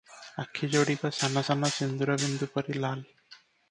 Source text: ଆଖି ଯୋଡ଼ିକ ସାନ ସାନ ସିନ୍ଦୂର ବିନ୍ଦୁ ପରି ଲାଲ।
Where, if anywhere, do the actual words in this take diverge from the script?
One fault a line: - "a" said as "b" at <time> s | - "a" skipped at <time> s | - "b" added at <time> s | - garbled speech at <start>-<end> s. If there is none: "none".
none